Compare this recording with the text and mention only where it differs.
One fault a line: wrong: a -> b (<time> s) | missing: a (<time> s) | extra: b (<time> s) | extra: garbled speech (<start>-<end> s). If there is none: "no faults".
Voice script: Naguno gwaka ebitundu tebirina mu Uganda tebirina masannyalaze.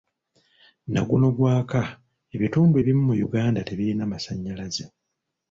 wrong: tebirina -> ebimu (2.8 s)